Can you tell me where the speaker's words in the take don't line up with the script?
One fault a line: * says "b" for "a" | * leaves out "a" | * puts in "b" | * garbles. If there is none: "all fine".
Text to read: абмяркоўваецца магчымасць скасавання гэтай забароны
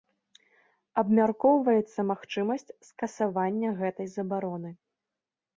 all fine